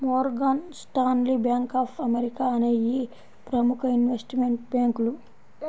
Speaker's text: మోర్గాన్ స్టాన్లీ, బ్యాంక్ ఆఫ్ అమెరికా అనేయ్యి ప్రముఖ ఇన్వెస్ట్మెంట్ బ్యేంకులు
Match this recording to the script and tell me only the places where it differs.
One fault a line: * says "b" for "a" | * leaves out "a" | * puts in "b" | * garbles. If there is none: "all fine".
all fine